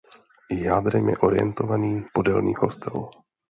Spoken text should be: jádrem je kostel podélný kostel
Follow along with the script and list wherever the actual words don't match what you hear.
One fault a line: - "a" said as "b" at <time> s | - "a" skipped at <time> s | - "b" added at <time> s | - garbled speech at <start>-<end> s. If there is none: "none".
- "kostel" said as "orientovaný" at 1.1 s